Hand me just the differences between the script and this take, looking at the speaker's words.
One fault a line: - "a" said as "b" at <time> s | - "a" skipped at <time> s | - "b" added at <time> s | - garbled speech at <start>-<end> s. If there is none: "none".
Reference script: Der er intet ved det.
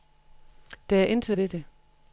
none